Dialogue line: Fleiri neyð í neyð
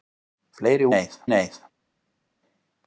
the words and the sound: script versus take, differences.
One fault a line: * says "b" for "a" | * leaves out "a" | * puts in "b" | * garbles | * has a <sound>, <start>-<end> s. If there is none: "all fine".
all fine